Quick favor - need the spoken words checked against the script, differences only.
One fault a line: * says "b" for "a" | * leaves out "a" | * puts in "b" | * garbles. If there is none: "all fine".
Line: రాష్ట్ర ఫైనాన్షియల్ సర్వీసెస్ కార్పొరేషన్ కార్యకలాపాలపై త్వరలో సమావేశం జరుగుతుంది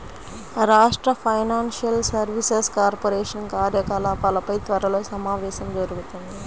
all fine